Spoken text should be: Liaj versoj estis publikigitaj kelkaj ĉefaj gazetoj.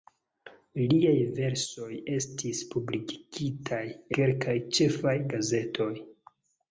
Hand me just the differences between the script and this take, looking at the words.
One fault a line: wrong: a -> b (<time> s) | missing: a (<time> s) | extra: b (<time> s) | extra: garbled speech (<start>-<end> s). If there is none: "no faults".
no faults